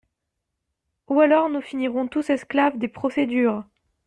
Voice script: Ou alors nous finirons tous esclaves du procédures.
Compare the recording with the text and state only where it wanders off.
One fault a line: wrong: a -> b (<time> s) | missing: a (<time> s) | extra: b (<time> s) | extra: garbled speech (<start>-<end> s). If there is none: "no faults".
wrong: du -> des (2.8 s)